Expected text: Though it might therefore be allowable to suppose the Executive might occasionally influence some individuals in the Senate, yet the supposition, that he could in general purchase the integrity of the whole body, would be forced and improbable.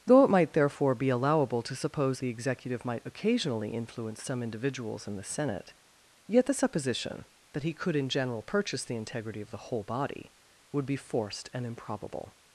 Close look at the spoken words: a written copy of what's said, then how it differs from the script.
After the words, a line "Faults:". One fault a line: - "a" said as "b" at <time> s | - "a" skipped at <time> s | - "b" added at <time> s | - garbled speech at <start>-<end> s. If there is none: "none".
Though it might therefore be allowable to suppose the Executive might occasionally influence some individuals in the Senate, yet the supposition, that he could in general purchase the integrity of the whole body, would be forced and improbable.
Faults:
none